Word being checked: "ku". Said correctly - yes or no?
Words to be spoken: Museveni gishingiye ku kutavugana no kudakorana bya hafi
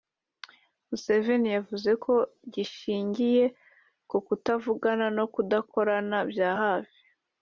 yes